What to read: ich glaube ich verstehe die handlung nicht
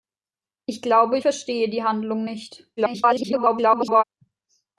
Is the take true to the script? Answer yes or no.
no